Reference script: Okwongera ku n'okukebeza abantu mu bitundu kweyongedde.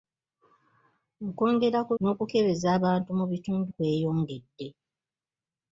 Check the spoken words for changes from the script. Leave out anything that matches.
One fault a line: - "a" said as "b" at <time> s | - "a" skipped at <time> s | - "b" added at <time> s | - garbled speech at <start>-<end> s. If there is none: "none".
none